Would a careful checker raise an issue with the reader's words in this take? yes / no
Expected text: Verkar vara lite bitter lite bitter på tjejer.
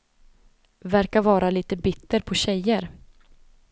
yes